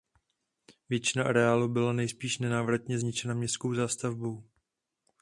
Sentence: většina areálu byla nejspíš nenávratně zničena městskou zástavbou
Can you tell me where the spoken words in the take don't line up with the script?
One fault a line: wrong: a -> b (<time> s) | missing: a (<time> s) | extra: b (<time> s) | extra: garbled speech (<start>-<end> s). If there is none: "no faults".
no faults